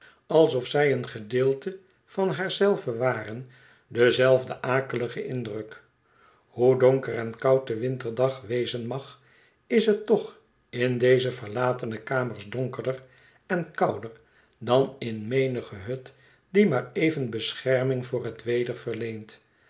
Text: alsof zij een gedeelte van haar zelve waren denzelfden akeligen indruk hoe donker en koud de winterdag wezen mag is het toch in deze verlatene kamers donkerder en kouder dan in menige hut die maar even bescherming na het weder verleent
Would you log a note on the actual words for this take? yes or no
yes